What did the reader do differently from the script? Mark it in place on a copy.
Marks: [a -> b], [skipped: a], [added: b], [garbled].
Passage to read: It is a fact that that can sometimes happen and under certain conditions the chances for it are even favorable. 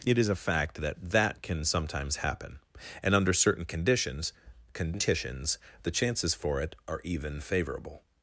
It is a fact that that can sometimes happen and under certain conditions [added: conditions] the chances for it are even favorable.